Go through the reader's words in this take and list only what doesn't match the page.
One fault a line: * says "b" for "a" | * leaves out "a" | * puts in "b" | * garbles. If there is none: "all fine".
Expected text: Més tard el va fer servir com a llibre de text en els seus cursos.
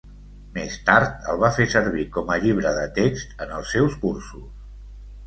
all fine